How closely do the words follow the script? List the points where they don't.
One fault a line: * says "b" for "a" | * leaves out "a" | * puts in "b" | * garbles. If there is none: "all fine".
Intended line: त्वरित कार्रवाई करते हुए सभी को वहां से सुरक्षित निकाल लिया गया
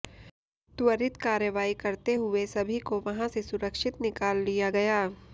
all fine